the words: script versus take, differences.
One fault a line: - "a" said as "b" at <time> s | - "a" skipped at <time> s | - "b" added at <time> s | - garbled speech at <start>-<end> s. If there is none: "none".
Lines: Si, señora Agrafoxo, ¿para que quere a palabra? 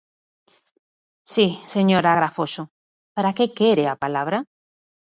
none